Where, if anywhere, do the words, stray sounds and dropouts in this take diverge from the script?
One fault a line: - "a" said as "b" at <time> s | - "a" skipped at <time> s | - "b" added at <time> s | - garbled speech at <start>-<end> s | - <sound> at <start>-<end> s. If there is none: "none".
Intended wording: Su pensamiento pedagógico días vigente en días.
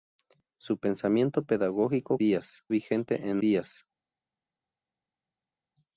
none